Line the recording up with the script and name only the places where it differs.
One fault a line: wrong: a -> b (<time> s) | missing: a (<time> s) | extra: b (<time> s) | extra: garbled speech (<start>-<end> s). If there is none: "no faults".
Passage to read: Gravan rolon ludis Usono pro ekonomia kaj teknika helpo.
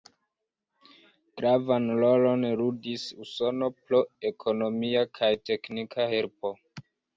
no faults